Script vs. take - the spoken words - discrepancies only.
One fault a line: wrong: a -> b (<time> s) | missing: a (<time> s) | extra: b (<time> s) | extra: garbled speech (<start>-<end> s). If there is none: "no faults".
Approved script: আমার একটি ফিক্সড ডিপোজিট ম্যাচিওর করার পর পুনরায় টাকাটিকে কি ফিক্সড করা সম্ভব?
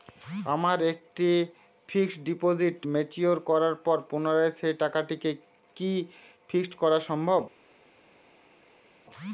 extra: সেই (4.6 s)